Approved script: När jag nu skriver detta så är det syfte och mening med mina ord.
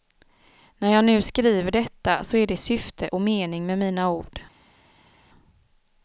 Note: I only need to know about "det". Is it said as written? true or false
true